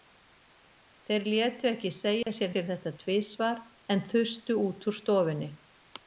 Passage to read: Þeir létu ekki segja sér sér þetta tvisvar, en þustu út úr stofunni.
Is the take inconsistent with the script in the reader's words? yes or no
no